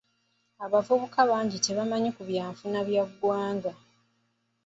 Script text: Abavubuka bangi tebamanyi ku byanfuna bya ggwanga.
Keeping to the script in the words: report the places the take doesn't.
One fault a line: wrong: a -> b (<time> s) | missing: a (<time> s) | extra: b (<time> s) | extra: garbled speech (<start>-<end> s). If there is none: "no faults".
no faults